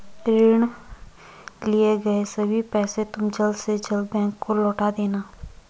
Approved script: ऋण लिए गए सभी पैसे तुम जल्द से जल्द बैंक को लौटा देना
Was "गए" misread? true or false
false